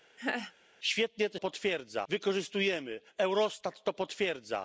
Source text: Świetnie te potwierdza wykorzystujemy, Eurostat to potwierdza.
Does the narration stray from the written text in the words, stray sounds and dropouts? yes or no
yes